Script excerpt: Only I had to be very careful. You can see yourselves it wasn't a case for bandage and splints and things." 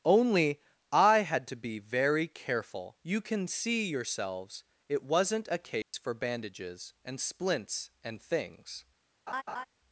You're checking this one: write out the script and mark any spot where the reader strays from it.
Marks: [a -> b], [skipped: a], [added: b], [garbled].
Only I had to be very careful. You can see yourselves it wasn't a case for [bandage -> bandages] and splints and things."